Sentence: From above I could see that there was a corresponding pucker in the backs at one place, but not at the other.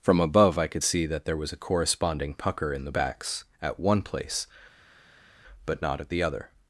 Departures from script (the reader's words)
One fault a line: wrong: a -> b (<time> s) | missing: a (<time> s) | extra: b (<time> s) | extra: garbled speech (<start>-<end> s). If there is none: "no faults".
no faults